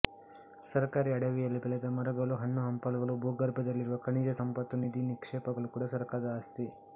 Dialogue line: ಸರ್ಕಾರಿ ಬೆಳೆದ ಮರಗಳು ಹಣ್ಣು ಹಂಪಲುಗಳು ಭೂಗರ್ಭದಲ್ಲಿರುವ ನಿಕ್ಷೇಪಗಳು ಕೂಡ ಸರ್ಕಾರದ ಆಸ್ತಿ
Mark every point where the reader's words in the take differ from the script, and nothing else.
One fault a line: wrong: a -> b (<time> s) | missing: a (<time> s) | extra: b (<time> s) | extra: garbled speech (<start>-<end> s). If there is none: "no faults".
extra: ಅಡವಿಯಲ್ಲಿ (1.1 s)
extra: ಖನಿಜ ಸಂಪತ್ತು ನಿಧಿ (4.0 s)